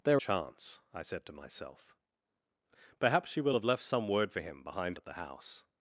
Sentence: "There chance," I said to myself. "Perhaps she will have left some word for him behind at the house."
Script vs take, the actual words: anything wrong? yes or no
no